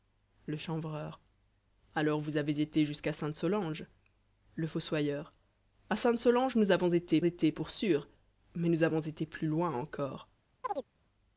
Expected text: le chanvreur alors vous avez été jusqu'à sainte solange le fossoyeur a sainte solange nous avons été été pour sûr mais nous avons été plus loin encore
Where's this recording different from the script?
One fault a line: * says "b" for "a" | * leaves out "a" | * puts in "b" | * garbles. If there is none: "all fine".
all fine